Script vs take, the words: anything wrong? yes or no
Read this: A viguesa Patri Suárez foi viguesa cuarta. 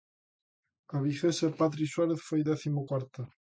yes